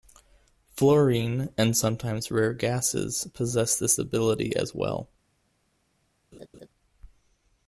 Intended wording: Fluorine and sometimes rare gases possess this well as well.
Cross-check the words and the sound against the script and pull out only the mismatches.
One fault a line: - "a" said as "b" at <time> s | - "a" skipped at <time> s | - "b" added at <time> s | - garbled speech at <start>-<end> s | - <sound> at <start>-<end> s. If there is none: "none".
- "well" said as "ability" at 4.0 s
- laugh at 6.3-6.7 s